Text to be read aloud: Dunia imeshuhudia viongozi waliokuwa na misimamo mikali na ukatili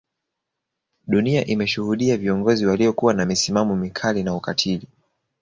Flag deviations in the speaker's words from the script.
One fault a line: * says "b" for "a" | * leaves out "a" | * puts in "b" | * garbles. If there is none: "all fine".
all fine